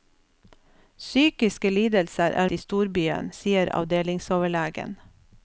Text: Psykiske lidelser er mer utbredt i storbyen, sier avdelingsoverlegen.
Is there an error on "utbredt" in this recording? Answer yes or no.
yes